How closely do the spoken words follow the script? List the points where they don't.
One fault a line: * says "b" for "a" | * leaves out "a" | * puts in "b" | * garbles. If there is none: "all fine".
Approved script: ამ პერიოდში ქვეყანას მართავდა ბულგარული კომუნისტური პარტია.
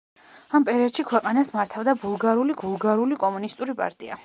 * puts in "ბულგარული"